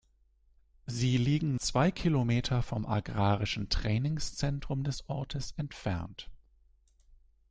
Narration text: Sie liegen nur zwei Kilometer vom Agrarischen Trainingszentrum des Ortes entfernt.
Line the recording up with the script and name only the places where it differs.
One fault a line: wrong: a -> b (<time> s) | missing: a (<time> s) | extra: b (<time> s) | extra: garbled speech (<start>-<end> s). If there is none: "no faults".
missing: nur (1.6 s)